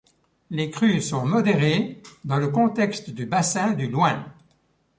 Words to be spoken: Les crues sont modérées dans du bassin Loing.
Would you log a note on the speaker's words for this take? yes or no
yes